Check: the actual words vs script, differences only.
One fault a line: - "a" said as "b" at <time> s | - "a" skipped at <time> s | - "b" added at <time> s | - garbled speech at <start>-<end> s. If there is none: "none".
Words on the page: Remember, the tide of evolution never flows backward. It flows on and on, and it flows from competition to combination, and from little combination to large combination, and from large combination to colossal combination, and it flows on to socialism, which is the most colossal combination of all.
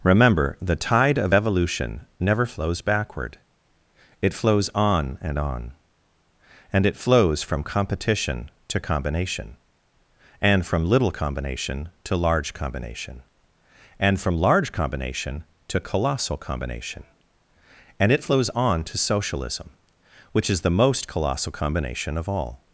none